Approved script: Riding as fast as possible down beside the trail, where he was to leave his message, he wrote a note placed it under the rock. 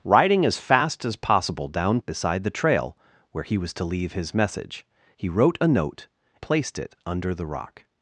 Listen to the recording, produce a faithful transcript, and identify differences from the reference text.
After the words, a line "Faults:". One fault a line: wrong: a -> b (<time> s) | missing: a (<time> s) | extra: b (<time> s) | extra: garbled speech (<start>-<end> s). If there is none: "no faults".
Riding as fast as possible down beside the trail, where he was to leave his message, he wrote a note placed it under the rock.
Faults:
no faults